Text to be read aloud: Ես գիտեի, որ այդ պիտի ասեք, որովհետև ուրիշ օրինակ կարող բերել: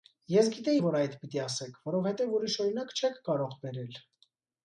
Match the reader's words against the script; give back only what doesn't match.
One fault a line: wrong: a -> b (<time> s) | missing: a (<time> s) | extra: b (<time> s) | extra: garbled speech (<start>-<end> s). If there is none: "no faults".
extra: չեք (3.0 s)